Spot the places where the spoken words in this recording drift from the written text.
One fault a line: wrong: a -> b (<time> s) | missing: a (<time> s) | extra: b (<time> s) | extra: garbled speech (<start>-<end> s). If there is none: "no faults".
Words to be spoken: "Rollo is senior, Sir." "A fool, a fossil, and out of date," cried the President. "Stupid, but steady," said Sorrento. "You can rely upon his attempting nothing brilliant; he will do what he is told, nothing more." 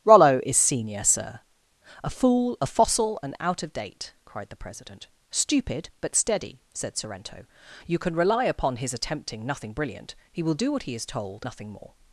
no faults